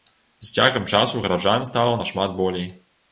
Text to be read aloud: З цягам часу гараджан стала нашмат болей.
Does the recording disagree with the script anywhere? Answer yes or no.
no